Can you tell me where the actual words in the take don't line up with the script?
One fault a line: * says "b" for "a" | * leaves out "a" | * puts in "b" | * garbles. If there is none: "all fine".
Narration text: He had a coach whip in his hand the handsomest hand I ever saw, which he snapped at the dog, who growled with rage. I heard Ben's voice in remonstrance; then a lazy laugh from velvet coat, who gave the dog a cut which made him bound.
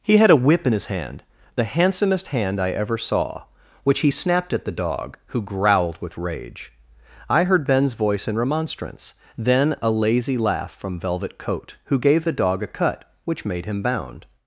* leaves out "coach"